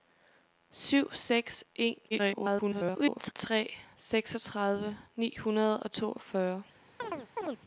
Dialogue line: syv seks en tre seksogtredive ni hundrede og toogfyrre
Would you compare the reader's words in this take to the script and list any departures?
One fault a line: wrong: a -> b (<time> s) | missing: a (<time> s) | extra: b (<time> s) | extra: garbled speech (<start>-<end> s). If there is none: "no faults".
extra: garbled speech (2.1-3.3 s)